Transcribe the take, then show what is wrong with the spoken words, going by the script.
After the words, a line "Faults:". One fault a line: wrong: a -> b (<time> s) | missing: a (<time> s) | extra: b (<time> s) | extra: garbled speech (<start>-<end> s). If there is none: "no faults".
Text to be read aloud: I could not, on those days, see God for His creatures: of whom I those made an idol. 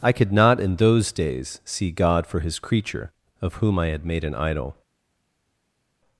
I could not, in those days, see God for His creature: of whom I had made an idol.
Faults:
wrong: on -> in (0.6 s)
wrong: creatures -> creature (2.6 s)
wrong: those -> had (3.9 s)